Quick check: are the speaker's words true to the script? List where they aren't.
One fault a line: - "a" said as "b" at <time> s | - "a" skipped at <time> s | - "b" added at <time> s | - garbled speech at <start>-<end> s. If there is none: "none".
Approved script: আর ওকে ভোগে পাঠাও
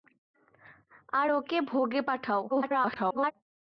- garbled speech at 2.5-3.3 s